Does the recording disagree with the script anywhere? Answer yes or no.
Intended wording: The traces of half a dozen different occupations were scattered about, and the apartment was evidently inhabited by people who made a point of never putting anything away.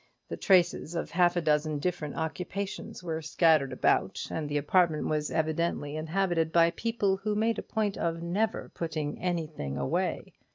no